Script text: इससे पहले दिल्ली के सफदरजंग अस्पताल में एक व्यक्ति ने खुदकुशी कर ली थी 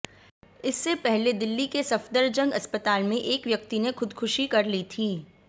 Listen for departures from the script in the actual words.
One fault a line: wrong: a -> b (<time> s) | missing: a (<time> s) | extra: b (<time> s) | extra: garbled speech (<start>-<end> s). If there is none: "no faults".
no faults